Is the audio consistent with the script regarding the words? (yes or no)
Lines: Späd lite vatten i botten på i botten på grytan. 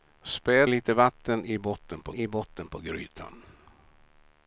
yes